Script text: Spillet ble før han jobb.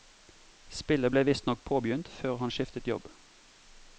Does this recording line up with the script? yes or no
no